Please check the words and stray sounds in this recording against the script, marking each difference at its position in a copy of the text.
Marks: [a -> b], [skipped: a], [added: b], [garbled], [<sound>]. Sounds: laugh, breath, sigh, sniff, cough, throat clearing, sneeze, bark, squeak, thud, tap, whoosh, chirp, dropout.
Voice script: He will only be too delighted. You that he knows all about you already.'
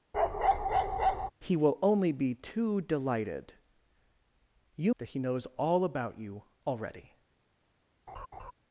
[bark] He will only be too delighted. You that he knows all about you already.' [laugh]